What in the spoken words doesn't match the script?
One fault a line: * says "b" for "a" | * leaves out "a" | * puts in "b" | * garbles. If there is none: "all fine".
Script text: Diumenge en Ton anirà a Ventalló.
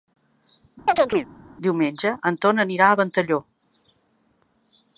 all fine